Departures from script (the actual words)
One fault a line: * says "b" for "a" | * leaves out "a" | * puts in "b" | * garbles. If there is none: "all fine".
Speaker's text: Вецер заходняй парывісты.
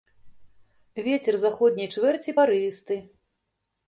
* puts in "чвэрці"